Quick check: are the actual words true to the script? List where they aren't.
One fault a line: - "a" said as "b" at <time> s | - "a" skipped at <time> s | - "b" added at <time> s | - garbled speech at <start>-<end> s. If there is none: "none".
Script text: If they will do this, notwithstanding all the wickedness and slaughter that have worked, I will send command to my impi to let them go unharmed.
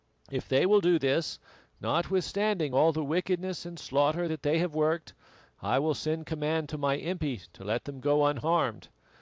- "they" added at 4.4 s